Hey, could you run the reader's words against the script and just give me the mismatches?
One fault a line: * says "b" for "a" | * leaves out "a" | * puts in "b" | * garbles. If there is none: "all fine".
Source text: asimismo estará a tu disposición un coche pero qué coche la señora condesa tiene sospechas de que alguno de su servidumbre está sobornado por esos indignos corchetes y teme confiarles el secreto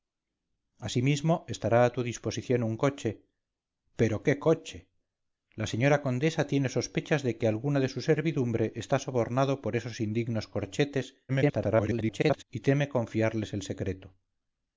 * garbles